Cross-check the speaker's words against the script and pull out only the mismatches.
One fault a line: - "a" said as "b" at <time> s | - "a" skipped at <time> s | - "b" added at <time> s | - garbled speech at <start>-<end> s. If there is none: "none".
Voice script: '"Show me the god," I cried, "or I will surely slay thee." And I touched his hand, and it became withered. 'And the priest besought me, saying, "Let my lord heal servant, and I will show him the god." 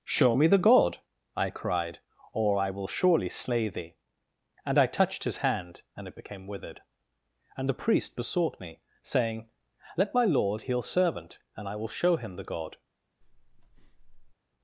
none